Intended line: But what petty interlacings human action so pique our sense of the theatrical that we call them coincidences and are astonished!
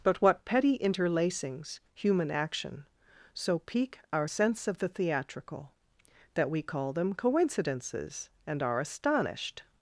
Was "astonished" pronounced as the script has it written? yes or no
yes